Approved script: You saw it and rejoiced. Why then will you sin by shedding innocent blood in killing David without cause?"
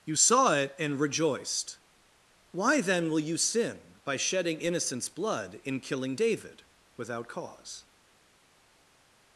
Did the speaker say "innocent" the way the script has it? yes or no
no